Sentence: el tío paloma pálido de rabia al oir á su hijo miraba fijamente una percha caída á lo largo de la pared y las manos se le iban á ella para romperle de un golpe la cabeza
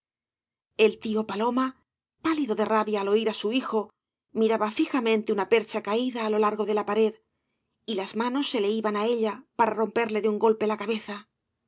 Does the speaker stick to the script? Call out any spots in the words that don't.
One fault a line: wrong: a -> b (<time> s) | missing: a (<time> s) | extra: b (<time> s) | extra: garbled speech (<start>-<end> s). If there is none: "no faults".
no faults